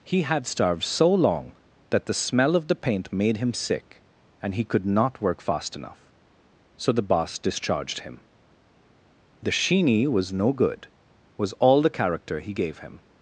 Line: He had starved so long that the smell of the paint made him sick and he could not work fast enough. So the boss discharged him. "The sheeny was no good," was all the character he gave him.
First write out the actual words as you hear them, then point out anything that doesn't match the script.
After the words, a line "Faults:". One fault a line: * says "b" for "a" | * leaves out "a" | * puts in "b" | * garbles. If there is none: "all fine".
He had starved so long that the smell of the paint made him sick and he could not work fast enough. So the boss discharged him. "The sheeny was no good," was all the character he gave him.
Faults:
all fine